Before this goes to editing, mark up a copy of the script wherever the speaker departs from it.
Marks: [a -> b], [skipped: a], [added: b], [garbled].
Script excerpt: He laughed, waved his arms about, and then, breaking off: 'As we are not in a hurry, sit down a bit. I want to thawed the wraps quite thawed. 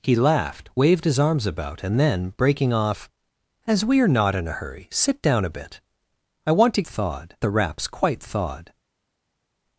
He laughed, waved his arms about, and then, breaking off: 'As we are not in a hurry, sit down a bit. I want to thawed the wraps quite thawed.